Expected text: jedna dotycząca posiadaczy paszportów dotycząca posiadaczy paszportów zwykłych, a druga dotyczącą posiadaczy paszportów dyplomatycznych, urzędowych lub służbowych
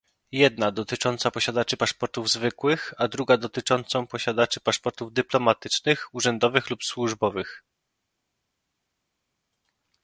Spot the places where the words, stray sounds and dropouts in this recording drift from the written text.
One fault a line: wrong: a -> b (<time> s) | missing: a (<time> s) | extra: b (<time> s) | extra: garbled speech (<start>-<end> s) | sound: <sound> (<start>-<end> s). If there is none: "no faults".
missing: dotycząca posiadaczy paszportów (2.3 s)